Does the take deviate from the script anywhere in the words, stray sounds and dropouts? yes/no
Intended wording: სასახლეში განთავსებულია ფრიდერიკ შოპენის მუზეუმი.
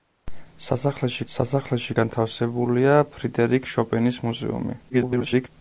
yes